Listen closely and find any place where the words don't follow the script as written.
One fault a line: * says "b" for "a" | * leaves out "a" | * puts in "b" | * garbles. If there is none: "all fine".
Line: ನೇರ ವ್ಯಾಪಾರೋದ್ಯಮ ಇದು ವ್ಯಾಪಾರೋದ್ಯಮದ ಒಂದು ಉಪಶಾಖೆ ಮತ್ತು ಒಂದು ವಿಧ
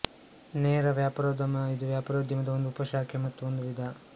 all fine